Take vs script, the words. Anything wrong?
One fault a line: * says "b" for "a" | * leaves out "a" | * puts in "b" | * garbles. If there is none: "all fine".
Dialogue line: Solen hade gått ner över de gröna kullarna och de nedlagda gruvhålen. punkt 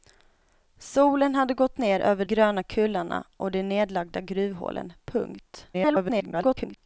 * leaves out "de"
* garbles